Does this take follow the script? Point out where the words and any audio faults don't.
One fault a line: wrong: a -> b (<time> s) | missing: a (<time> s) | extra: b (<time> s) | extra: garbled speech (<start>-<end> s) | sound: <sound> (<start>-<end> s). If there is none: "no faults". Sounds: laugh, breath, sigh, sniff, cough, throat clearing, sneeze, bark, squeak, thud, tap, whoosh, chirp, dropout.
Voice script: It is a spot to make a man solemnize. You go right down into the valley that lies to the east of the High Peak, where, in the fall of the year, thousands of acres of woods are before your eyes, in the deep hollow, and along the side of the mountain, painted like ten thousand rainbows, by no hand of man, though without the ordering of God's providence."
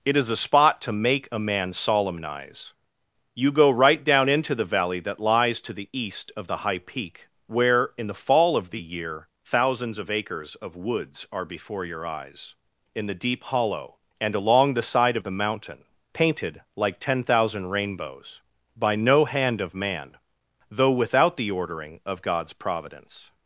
no faults